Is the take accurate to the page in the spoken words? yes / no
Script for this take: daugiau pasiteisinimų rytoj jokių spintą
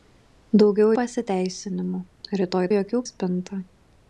yes